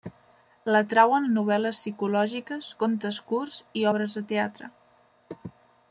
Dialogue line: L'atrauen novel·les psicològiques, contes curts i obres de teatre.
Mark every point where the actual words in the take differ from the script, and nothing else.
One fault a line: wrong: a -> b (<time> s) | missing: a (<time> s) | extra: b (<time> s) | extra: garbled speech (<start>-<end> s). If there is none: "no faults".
no faults